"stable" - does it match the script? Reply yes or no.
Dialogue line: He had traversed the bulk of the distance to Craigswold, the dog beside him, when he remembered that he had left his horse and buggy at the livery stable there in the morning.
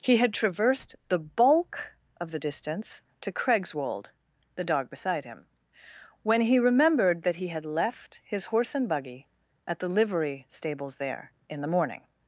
no